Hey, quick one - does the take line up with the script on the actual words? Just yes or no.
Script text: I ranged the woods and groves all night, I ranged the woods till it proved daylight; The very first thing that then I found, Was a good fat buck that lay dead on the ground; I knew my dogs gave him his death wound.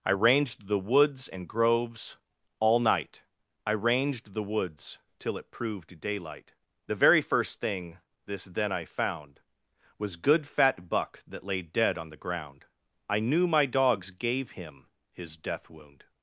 no